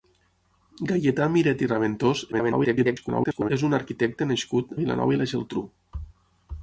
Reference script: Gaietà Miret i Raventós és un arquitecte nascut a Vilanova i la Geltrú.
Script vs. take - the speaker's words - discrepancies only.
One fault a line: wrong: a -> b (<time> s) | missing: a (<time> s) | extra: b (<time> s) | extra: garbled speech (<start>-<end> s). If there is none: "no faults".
extra: garbled speech (2.3-3.5 s)
missing: a (4.8 s)